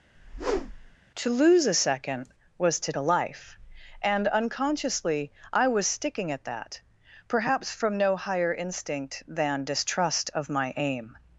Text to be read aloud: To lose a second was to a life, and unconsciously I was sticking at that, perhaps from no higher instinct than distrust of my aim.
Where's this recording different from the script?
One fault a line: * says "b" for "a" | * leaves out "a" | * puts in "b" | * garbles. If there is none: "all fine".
all fine